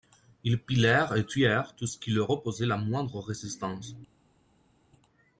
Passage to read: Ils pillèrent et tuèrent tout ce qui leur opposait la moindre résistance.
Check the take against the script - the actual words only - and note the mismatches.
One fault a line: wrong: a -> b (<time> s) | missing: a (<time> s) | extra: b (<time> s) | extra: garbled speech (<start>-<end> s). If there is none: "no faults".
no faults